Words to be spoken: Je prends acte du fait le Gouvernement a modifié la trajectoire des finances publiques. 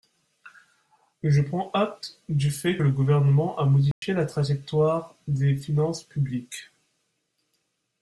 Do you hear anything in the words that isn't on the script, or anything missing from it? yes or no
no